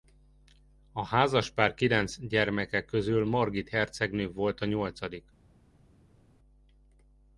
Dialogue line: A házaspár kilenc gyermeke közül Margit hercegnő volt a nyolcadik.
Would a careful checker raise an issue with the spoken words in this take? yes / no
no